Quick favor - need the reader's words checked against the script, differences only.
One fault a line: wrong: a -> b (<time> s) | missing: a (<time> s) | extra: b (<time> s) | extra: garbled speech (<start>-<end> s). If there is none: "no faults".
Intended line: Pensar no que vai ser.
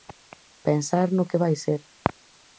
no faults